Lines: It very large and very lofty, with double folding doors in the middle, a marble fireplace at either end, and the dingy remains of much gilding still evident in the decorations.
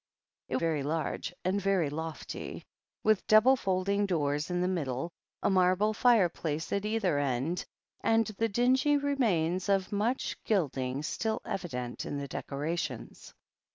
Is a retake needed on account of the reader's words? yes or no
no